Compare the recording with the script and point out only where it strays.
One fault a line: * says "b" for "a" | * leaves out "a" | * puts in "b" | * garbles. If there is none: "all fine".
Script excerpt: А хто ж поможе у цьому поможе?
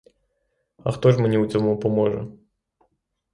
* says "мені" for "поможе"